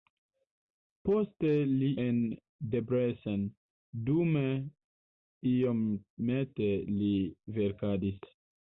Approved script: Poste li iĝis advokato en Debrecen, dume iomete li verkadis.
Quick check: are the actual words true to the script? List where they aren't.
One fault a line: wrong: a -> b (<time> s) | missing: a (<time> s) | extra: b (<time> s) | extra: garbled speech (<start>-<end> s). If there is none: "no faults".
missing: iĝis advokato (1.9 s)